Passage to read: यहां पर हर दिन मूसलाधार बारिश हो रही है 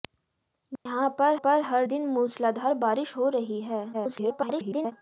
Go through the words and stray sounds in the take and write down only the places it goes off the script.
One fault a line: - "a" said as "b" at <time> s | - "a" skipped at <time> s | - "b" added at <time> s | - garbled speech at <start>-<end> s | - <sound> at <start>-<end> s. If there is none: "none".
- dropout at 0.8-0.9 s
- "पर" added at 1.3 s
- garbled speech at 3.9-4.9 s